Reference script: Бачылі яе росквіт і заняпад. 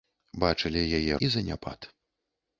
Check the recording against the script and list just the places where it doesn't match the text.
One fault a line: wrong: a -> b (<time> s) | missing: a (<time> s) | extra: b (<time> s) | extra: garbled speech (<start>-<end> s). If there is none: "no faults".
missing: росквіт (1.2 s)